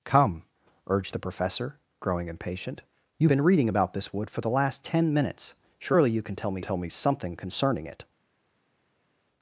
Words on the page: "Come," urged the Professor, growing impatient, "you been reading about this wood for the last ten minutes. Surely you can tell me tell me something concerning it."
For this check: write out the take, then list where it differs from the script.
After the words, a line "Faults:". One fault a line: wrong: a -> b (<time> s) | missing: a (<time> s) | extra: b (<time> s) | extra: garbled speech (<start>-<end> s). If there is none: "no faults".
"Come," urged the Professor, growing impatient, "you been reading about this wood for the last ten minutes. Surely you can tell me tell me something concerning it."
Faults:
no faults